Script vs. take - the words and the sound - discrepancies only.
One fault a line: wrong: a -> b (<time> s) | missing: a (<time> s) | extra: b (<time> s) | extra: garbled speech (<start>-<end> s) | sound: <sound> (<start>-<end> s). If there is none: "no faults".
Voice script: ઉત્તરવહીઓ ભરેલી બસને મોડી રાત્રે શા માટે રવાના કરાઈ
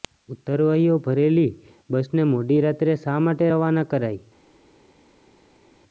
no faults